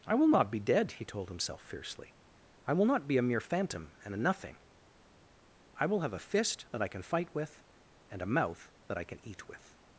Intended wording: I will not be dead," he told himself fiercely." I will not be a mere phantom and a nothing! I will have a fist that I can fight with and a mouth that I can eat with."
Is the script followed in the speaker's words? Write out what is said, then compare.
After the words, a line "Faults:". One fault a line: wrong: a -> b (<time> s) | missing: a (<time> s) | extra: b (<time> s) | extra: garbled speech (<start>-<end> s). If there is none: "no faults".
I will not be dead," he told himself fiercely." I will not be a mere phantom and a nothing! I will have a fist that I can fight with and a mouth that I can eat with."
Faults:
no faults